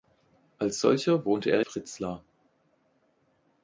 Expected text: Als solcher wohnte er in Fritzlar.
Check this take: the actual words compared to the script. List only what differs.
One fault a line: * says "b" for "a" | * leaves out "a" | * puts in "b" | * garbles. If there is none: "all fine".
* leaves out "in"